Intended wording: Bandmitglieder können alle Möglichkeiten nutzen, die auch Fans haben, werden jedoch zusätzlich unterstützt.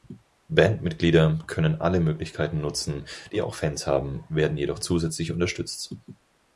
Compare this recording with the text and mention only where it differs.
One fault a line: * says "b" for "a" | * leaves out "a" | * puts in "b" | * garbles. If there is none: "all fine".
all fine